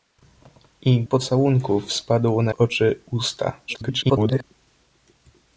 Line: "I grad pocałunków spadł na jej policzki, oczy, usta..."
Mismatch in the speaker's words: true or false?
true